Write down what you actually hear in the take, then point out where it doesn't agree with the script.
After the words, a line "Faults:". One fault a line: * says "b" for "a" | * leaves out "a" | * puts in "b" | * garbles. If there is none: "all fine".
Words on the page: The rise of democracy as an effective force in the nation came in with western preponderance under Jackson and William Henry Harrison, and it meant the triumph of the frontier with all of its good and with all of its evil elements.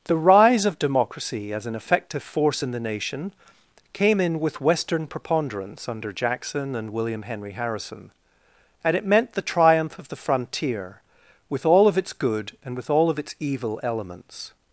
The rise of democracy as an effective force in the nation came in with western preponderance under Jackson and William Henry Harrison, and it meant the triumph of the frontier with all of its good and with all of its evil elements.
Faults:
all fine